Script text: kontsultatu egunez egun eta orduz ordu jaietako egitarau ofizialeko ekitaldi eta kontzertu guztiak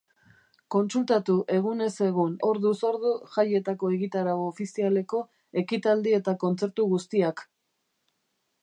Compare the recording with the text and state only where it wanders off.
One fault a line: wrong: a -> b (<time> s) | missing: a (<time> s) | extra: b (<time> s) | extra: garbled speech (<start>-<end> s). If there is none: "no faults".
missing: eta (2.3 s)